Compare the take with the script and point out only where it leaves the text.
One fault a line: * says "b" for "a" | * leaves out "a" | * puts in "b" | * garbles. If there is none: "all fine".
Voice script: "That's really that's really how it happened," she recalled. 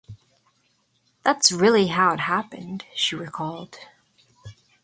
* leaves out "that's really"